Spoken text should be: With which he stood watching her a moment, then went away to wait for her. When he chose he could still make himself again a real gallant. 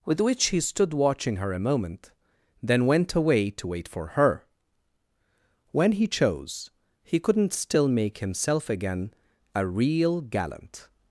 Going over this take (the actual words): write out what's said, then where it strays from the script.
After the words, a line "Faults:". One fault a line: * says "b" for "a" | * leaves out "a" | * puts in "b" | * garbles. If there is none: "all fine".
With which he stood watching her a moment, then went away to wait for her. When he chose he couldn't still make himself again a real gallant.
Faults:
* says "couldn't" for "could"